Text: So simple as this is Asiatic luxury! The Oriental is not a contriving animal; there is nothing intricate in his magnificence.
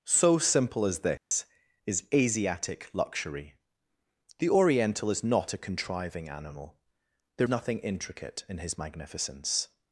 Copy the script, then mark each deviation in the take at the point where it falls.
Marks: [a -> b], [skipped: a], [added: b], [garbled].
So simple as this is Asiatic luxury! The Oriental is not a contriving animal; there [skipped: is] nothing intricate in his magnificence.